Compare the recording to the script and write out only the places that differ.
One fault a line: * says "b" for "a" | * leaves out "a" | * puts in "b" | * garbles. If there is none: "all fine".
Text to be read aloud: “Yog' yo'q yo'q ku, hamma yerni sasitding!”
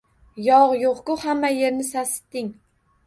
* leaves out "yo'q"